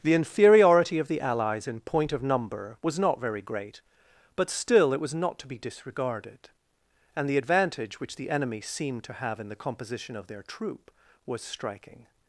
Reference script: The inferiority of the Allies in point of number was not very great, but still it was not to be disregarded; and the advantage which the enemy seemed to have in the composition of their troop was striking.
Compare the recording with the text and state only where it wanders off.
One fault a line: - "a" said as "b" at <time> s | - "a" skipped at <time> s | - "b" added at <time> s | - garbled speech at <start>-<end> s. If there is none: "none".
none